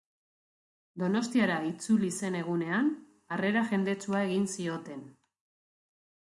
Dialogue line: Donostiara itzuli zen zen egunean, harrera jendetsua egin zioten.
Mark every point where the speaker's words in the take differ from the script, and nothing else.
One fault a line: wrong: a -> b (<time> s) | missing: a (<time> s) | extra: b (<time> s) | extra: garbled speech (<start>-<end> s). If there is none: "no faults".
missing: zen (2.4 s)